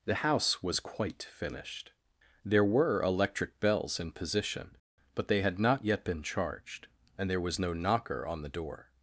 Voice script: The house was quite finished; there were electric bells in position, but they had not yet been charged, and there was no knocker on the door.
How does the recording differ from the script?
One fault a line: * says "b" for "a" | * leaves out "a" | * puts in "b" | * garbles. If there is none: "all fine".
all fine